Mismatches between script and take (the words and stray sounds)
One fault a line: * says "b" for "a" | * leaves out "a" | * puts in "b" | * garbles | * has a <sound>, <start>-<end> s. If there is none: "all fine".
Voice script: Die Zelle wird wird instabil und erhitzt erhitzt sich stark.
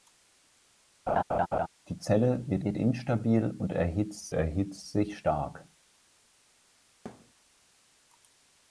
* has a laugh, 1.1-1.7 s
* has a thud, 7.1-7.3 s